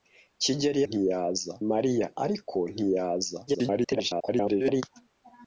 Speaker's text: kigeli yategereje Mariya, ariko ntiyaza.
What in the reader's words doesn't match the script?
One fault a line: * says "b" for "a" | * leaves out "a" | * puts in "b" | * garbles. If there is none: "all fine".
* says "ntiyaza" for "yategereje"
* garbles